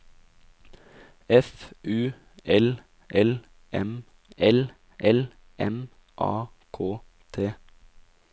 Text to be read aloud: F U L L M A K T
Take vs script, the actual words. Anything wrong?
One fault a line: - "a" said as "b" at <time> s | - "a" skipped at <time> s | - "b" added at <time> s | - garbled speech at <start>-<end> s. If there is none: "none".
- "L L M" added at 4.4 s